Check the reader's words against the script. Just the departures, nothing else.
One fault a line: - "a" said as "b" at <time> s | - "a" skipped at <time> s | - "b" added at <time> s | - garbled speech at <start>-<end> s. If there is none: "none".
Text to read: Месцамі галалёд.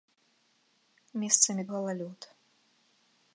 none